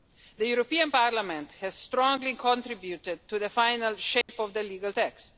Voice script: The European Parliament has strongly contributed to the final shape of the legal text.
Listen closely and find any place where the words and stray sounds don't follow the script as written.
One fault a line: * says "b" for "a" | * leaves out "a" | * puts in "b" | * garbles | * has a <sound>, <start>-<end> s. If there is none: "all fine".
* has a dropout, 4.2-4.3 s